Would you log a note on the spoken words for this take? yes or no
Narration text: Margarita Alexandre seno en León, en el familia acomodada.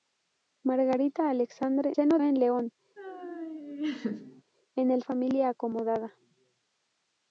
no